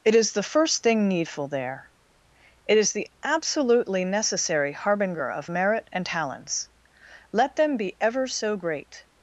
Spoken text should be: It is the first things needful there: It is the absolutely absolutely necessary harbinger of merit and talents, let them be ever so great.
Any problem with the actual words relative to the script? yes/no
yes